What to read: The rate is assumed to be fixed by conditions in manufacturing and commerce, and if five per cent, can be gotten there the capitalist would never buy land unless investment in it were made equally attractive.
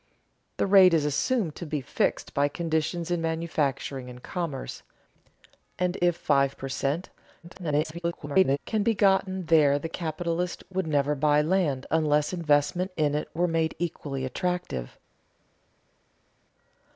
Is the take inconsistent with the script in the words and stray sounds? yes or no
yes